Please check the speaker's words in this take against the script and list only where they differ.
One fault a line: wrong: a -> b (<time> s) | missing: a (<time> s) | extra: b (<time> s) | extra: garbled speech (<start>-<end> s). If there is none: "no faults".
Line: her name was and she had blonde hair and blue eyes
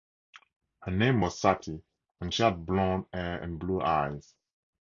extra: sati (1.4 s)